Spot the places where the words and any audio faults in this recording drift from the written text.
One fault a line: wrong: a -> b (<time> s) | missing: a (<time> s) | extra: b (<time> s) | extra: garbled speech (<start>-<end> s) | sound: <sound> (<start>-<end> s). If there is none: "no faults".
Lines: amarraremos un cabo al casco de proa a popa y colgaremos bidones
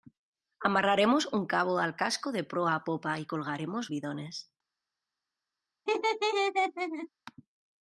sound: laugh (5.9-7.1 s)